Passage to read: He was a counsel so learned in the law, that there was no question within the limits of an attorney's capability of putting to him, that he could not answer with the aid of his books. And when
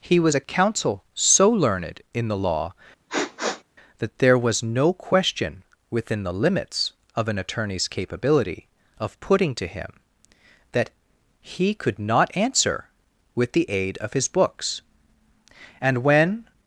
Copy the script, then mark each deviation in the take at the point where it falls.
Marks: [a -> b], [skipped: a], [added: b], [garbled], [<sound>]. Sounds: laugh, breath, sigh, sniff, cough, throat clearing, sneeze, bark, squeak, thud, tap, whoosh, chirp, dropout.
He was a counsel so learned in the law, [sniff] that there was no question within the limits of an attorney's capability of putting to him, that he could not answer with the aid of his books. And when